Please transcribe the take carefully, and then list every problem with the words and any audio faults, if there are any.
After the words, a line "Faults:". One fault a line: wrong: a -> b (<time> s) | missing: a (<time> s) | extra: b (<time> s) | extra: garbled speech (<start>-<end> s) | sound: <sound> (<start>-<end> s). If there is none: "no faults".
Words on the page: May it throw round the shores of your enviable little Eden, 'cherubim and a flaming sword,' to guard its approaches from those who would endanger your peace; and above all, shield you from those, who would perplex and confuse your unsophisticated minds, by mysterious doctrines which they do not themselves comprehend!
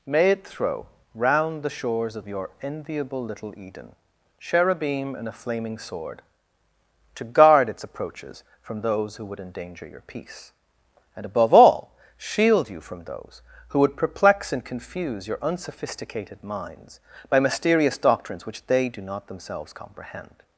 May it throw round the shores of your enviable little Eden, 'cherubim and a flaming sword,' to guard its approaches from those who would endanger your peace; and above all, shield you from those, who would perplex and confuse your unsophisticated minds, by mysterious doctrines which they do not themselves comprehend!
Faults:
no faults